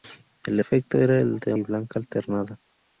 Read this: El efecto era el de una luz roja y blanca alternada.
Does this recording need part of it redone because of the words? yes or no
yes